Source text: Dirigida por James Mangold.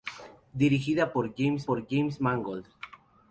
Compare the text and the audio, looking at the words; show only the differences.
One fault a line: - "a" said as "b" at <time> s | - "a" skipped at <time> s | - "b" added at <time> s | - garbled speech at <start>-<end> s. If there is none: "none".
- "por James" added at 1.7 s